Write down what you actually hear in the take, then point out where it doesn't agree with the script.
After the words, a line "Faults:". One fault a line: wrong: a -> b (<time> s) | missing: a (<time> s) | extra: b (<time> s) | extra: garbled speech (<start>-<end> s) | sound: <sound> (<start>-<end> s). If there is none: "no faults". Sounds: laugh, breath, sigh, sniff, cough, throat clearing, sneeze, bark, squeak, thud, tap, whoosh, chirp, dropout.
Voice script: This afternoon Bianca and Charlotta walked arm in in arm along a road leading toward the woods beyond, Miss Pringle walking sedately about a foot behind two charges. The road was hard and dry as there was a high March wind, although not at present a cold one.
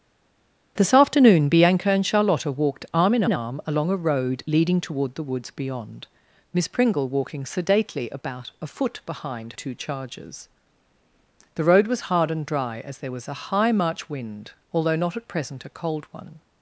This afternoon Bianca and Charlotta walked arm in in arm along a road leading toward the woods beyond, Miss Pringle walking sedately about a foot behind two charges. The road was hard and dry as there was a high March wind, although not at present a cold one.
Faults:
no faults